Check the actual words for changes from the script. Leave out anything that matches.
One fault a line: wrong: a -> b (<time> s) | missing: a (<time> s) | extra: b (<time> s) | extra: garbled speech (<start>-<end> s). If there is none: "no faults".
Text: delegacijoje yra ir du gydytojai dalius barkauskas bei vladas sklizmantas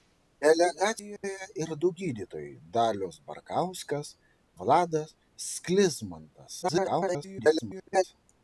missing: yra (1.3 s)
missing: bei (4.1 s)
extra: garbled speech (6.6-8.0 s)